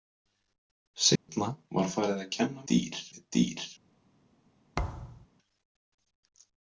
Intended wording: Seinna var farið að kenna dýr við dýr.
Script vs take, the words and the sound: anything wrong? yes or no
yes